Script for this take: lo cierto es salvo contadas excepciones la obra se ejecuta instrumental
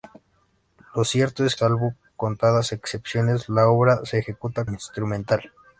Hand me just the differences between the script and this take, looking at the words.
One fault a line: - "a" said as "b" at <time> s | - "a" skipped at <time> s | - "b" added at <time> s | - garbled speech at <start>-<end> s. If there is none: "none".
none